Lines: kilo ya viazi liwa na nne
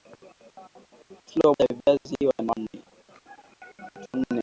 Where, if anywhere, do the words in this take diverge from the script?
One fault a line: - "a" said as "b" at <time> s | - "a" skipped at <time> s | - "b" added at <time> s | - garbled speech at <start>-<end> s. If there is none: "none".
none